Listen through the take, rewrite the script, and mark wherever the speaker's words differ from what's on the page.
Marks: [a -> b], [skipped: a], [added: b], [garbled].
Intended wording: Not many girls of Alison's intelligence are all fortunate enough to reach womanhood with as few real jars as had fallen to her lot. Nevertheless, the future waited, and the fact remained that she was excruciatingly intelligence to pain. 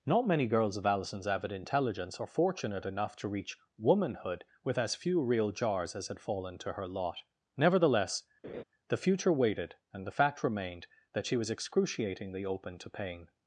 Not many girls of Alison's [added: avid] intelligence are [skipped: all] fortunate enough to reach womanhood with as few real jars as had fallen to her lot. Nevertheless, the future waited, and the fact remained that she was excruciatingly [intelligence -> open] to pain.